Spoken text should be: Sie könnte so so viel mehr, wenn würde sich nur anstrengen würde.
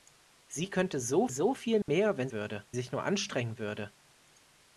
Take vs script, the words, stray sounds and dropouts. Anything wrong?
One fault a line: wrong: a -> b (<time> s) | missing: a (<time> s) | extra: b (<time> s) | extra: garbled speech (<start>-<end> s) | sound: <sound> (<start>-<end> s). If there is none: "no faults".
sound: dropout (1.8-1.9 s)